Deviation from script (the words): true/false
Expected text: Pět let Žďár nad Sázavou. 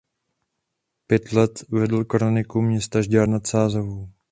true